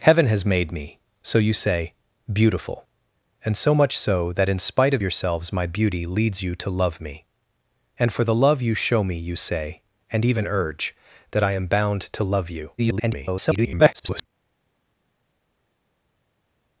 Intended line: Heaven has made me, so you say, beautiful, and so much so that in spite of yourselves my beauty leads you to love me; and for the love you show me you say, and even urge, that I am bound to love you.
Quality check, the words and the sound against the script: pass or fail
fail